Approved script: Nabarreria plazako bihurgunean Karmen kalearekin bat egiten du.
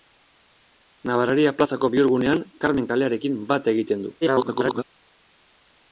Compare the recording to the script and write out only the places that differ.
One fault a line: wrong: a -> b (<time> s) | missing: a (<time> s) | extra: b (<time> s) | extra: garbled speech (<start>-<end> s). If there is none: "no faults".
extra: garbled speech (4.2-4.8 s)